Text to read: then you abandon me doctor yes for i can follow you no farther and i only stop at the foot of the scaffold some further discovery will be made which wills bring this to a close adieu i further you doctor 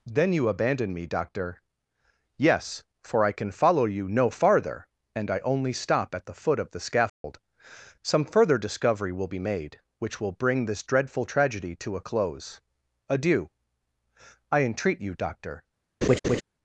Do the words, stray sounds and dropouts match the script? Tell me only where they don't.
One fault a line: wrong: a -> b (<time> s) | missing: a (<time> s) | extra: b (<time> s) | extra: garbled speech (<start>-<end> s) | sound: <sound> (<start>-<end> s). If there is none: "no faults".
sound: dropout (7.1-7.2 s)
wrong: wills -> will (10.2 s)
extra: dreadful tragedy (10.8 s)
wrong: further -> entreat (14.6 s)
sound: laugh (16.0-16.4 s)